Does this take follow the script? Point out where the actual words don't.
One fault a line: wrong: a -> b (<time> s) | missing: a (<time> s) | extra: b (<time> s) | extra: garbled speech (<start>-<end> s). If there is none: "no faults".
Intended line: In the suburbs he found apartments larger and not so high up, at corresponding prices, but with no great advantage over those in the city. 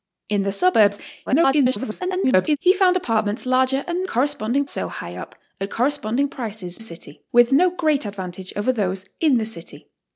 extra: garbled speech (1.3-2.6 s)
wrong: not -> corresponding (4.1 s)
wrong: but -> city (6.8 s)